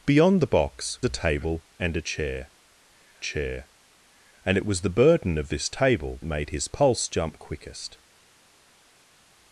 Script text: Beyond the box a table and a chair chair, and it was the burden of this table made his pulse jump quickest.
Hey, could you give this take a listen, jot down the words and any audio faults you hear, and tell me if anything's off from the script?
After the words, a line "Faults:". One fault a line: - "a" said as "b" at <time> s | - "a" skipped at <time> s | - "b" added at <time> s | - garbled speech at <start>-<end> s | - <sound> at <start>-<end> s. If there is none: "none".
Beyond the box a table and a chair chair, and it was the burden of this table made his pulse jump quickest.
Faults:
none